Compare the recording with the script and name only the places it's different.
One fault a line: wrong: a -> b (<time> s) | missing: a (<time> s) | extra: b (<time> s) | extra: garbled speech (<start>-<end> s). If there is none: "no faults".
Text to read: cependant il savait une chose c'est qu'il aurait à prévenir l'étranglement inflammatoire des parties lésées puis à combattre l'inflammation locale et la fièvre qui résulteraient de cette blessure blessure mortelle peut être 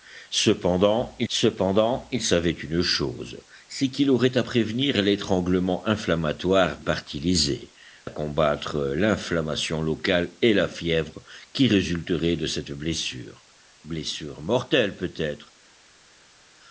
extra: cependant il (1.3 s)
missing: des (6.8 s)
missing: puis (7.7 s)